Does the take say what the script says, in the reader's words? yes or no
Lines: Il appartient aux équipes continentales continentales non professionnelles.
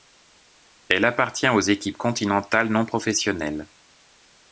no